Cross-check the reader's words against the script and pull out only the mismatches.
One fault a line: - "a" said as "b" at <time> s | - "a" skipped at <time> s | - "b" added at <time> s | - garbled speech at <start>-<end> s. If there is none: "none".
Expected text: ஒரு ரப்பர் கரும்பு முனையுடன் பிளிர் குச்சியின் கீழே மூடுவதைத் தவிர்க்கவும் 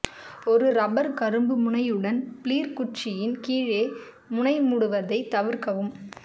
- "முனை" added at 4.3 s